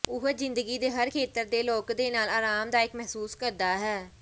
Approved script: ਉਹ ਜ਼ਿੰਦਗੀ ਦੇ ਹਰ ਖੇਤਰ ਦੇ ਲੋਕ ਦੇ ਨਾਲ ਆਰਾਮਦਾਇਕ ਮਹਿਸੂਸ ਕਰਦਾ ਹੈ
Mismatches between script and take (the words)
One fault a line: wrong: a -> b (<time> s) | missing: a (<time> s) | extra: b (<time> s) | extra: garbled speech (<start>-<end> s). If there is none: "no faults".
no faults